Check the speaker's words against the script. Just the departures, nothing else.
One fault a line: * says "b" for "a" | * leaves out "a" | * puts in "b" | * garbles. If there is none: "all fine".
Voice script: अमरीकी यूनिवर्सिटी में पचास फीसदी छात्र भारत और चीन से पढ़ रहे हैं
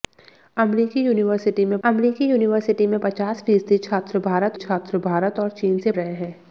* puts in "अमरीकी यूनिवर्सिटी में"
* puts in "छात्र भारत"
* leaves out "पढ़"